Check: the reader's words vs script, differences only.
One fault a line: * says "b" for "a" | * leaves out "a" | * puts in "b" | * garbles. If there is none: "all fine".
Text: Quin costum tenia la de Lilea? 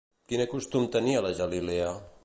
all fine